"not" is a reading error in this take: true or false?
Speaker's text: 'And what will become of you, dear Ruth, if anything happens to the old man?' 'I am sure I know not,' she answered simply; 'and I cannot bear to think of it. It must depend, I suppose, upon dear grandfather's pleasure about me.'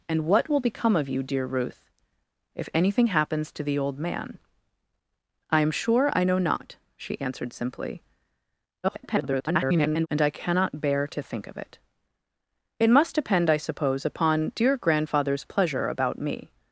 false